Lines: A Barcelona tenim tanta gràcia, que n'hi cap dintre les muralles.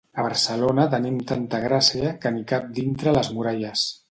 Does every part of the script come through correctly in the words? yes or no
yes